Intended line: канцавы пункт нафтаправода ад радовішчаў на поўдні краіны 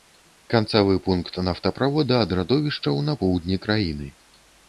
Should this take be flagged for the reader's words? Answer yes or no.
no